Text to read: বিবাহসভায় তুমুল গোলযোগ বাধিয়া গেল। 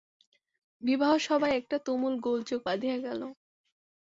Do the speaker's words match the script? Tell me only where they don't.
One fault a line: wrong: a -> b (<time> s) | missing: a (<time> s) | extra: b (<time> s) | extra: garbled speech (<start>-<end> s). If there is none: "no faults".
extra: একটা (1.6 s)